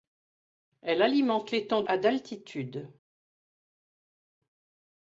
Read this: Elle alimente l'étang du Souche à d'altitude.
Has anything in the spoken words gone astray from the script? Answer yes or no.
yes